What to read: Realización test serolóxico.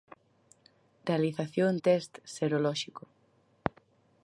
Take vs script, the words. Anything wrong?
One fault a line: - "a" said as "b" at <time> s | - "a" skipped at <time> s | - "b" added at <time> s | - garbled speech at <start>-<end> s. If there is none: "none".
none